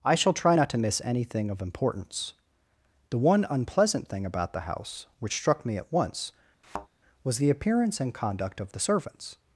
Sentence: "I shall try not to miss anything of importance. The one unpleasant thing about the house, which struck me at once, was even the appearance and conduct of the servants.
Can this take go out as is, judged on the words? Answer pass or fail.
fail